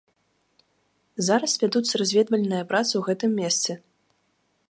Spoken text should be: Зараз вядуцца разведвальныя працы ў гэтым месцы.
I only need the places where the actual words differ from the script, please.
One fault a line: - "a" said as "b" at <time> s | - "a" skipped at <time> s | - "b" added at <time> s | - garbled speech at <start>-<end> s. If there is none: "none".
none